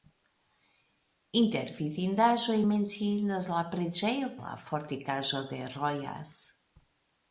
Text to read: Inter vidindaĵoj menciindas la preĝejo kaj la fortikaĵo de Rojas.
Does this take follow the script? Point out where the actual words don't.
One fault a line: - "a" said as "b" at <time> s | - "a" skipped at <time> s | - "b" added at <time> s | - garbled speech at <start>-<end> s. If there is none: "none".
- "kaj" skipped at 4.3 s